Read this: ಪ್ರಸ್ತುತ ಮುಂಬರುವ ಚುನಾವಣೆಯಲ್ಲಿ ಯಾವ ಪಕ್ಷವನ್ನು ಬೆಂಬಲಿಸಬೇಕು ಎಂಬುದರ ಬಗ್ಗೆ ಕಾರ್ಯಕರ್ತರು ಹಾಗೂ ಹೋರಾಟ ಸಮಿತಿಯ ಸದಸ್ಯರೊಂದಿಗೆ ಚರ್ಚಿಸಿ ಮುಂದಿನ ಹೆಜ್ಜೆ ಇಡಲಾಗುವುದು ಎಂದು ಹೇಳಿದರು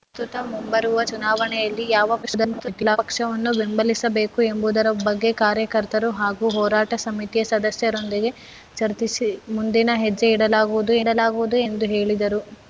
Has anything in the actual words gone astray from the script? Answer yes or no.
yes